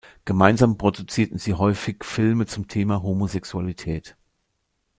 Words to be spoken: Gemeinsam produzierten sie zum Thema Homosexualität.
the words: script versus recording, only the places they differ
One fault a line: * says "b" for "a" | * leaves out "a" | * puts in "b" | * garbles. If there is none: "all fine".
* puts in "häufig Filme"